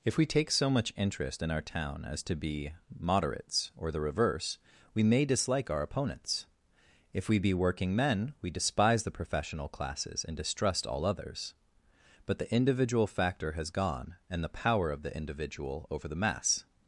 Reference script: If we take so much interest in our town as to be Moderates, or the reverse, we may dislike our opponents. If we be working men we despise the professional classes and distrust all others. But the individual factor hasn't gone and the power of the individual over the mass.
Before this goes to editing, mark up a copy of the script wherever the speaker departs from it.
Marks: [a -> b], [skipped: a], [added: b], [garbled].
If we take so much interest in our town as to be Moderates, or the reverse, we may dislike our opponents. If we be working men we despise the professional classes and distrust all others. But the individual factor [hasn't -> has] gone and the power of the individual over the mass.